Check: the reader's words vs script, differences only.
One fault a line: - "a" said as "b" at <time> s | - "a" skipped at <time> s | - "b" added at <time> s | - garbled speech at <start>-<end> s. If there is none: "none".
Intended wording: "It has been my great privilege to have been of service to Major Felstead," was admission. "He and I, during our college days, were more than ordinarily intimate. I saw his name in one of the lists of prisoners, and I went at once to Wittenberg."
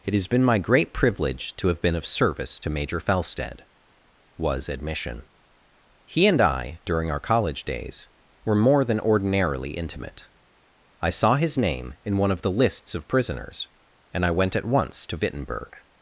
none